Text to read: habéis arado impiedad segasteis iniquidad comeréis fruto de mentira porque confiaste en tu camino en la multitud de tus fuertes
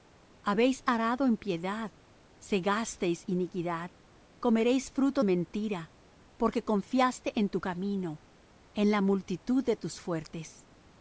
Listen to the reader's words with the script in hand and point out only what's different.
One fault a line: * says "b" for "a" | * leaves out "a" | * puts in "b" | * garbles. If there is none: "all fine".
* leaves out "de"